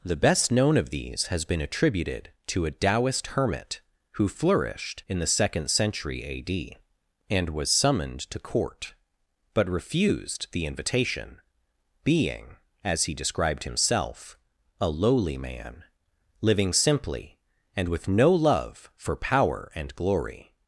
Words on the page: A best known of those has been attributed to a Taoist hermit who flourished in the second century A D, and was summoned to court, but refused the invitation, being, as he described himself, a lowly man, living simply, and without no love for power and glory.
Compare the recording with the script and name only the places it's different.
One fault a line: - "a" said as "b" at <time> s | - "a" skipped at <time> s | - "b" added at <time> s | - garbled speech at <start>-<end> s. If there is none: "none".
- "A" said as "The" at 0.0 s
- "those" said as "these" at 0.9 s
- "without" said as "with" at 17.9 s